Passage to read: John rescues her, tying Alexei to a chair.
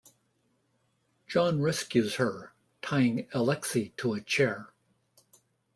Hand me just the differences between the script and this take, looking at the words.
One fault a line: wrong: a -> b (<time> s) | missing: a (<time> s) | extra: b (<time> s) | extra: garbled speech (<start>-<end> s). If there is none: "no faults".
no faults